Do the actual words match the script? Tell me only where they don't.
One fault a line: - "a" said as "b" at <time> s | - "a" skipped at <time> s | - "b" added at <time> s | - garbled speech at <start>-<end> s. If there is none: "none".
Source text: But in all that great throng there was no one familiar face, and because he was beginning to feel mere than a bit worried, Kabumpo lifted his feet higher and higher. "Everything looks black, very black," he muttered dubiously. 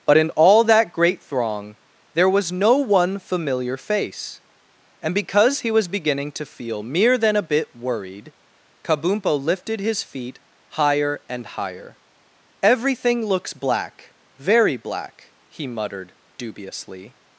none